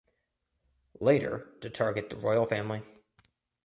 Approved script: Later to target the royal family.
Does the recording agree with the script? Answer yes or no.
yes